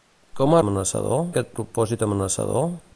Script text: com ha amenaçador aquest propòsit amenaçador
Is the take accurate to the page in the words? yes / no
yes